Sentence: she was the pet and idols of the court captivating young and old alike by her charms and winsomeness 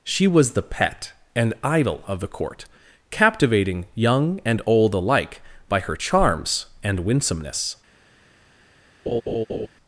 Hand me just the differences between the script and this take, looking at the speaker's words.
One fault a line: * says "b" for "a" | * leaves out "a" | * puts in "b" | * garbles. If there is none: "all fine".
* says "idol" for "idols"